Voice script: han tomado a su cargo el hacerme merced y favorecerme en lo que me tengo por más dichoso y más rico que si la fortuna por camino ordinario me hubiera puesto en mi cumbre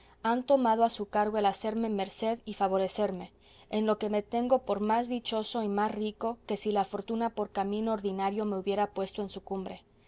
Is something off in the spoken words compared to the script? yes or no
yes